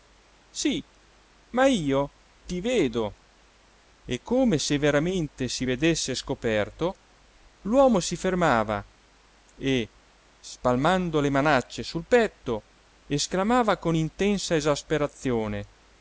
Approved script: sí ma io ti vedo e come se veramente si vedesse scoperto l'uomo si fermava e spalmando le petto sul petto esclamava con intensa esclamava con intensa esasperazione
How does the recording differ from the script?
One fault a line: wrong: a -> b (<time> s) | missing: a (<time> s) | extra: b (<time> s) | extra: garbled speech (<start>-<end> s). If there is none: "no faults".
wrong: petto -> manacce (11.3 s)
missing: esclamava con intensa (14.5 s)